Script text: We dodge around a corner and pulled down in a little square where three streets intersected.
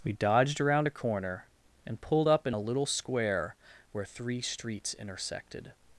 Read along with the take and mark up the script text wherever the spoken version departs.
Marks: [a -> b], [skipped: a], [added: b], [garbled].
We [dodge -> dodged] around a corner and pulled [down -> up] in a little square where three streets intersected.